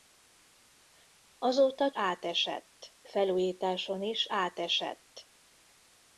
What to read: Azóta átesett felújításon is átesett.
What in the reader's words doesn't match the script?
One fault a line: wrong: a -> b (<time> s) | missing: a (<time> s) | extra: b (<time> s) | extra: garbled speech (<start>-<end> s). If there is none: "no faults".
no faults